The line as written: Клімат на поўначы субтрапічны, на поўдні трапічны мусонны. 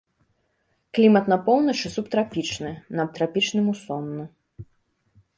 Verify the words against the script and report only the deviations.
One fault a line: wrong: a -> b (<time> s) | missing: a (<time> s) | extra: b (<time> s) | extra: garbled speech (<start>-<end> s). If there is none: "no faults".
missing: поўдні (3.1 s)